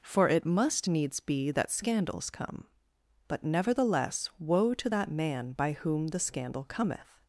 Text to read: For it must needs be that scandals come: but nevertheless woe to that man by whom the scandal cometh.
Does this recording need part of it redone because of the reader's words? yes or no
no